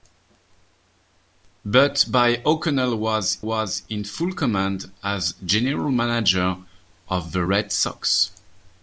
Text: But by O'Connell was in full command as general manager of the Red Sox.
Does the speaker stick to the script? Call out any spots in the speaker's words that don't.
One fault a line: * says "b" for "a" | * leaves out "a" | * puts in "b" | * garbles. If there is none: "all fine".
* puts in "was"